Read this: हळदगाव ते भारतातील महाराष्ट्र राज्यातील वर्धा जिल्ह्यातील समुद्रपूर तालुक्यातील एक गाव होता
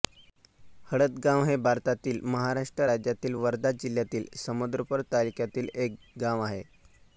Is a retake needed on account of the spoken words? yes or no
yes